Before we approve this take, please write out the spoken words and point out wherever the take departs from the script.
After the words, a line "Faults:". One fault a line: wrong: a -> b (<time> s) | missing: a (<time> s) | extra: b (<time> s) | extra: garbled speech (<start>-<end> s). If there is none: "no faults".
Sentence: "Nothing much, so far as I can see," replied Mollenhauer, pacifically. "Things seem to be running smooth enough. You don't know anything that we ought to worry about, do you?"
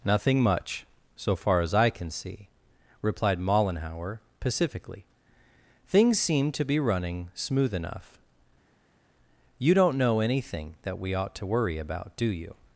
"Nothing much, so far as I can see," replied Mollenhauer, pacifically. "Things seem to be running smooth enough. You don't know anything that we ought to worry about, do you?"
Faults:
no faults